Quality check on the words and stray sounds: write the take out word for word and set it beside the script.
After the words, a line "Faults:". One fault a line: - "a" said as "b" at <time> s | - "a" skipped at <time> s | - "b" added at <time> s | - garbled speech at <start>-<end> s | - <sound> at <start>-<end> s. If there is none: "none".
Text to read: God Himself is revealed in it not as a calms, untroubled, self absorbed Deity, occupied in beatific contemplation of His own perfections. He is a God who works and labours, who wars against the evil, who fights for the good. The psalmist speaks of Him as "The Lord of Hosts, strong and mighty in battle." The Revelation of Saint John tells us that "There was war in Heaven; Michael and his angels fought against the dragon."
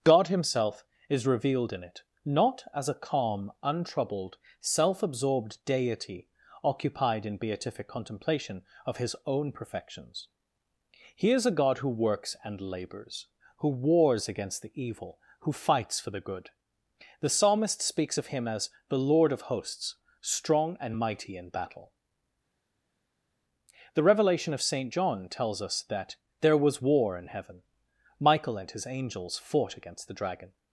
God Himself is revealed in it not as a calm, untroubled, self absorbed Deity, occupied in beatific contemplation of His own perfections. He is a God who works and labours, who wars against the evil, who fights for the good. The psalmist speaks of Him as "The Lord of Hosts, strong and mighty in battle." The Revelation of Saint John tells us that "There was war in Heaven; Michael and his angels fought against the dragon."
Faults:
- "calms" said as "calm" at 3.0 s